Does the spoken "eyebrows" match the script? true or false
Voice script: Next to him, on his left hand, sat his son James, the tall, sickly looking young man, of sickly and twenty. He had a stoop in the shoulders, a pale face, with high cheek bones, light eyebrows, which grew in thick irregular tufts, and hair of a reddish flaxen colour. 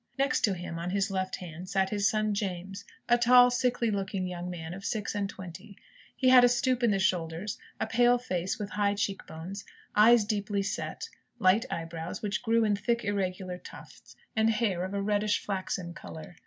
true